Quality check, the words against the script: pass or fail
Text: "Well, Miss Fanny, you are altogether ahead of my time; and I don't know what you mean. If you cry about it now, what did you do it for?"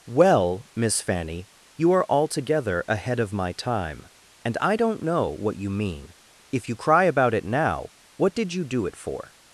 pass